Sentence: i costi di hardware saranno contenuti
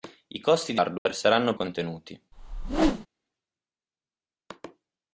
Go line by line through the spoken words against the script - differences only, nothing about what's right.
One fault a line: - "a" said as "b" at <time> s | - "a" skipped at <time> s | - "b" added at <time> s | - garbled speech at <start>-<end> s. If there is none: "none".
none